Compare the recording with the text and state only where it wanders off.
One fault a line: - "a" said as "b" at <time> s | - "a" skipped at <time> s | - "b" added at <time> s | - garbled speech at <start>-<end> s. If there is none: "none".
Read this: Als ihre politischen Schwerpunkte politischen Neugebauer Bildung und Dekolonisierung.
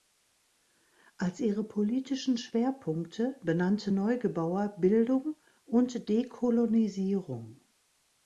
- "politischen" said as "benannte" at 3.4 s